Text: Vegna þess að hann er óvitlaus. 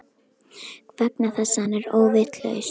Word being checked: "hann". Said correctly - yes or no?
yes